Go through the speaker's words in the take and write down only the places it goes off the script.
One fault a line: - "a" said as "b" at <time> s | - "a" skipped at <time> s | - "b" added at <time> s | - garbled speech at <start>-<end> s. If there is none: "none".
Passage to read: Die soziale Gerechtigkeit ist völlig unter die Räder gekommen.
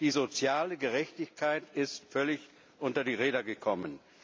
none